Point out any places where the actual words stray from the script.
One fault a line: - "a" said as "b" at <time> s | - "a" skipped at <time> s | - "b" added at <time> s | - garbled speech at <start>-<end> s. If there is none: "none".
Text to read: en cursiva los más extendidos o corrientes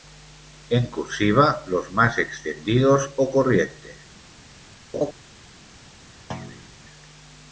none